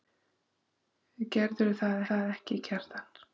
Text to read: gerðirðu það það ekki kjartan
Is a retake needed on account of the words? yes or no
no